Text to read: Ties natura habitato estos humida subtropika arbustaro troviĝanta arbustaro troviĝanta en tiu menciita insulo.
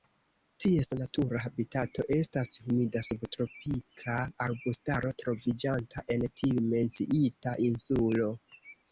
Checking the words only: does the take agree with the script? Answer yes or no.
no